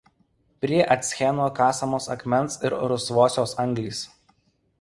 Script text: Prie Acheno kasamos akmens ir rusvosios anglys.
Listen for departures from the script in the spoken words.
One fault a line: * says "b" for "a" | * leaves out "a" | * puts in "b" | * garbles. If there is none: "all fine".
all fine